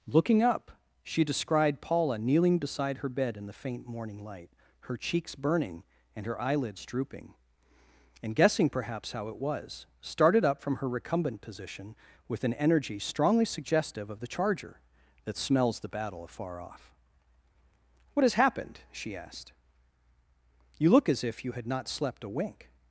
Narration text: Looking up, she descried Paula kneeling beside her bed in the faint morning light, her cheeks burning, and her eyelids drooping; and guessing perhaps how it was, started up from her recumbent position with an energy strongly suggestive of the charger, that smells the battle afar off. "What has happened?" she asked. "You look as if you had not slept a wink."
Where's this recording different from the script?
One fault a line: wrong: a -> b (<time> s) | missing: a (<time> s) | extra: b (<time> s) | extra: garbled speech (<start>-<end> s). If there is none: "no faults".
no faults